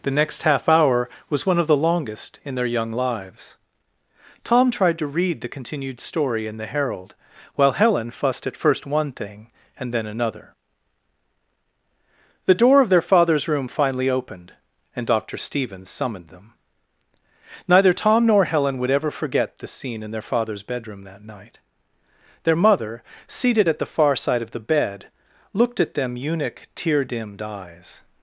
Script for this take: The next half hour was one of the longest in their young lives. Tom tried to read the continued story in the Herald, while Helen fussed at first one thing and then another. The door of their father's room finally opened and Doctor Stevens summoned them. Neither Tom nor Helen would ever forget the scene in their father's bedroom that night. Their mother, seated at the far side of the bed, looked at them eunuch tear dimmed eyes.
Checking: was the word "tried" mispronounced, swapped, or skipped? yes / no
no